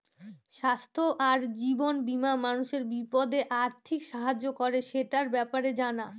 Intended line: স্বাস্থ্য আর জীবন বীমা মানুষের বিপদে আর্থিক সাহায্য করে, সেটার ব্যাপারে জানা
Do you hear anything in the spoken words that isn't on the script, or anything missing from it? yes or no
no